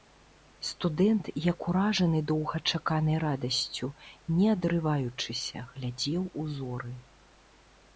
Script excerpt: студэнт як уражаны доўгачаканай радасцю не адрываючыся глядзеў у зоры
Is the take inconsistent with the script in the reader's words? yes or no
no